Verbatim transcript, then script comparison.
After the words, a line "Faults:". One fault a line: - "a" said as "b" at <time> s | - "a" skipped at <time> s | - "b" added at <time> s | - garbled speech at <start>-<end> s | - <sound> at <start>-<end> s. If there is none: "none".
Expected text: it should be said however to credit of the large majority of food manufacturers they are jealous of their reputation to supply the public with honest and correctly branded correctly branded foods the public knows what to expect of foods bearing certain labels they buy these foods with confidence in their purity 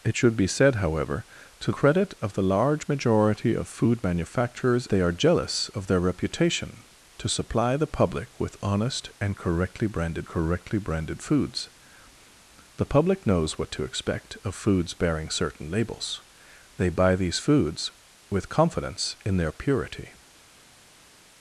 it should be said however to credit of the large majority of food manufacturers they are jealous of their reputation to supply the public with honest and correctly branded correctly branded foods the public knows what to expect of foods bearing certain labels they buy these foods with confidence in their purity
Faults:
none